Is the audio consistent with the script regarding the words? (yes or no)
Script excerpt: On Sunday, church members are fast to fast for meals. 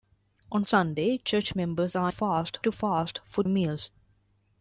yes